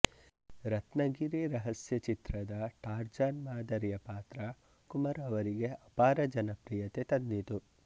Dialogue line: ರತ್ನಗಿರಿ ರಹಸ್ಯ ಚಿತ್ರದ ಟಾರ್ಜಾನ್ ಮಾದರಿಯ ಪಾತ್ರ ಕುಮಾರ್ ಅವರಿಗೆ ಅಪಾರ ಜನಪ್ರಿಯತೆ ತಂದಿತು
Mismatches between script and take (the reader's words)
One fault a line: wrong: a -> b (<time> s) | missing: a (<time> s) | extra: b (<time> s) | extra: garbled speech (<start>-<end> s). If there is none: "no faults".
no faults